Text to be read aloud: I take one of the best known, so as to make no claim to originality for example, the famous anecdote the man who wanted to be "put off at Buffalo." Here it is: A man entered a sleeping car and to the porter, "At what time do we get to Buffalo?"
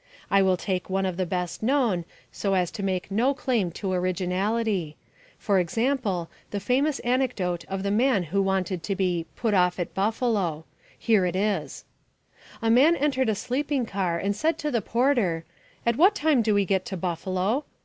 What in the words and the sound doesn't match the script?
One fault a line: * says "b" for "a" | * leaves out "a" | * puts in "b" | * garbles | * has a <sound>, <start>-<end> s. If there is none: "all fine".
* puts in "will"
* puts in "of"
* puts in "said"